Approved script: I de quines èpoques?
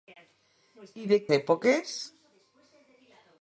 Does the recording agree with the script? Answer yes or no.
no